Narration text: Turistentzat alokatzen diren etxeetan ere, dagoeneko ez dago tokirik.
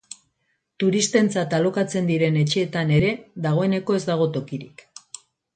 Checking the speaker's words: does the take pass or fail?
pass